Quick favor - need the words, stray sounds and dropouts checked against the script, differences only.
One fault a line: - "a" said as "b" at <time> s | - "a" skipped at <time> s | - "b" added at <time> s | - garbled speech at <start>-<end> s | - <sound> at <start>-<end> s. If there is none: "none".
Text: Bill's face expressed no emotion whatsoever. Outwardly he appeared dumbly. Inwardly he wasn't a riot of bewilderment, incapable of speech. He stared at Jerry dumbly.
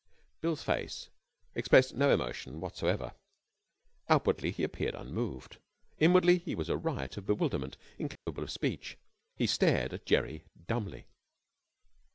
- "dumbly" said as "unmoved" at 4.9 s
- "wasn't" said as "was" at 6.5 s
- dropout at 8.2-8.3 s